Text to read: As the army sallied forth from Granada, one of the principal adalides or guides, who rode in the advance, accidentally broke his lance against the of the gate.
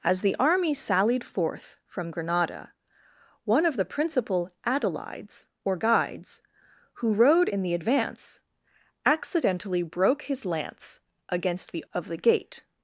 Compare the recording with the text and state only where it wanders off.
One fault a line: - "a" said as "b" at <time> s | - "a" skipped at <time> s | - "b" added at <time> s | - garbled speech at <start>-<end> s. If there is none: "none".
none